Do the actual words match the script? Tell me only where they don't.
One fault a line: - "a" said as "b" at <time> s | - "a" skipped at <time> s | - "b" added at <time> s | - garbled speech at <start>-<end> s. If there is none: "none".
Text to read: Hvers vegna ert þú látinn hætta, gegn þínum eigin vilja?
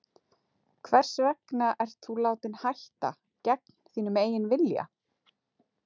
none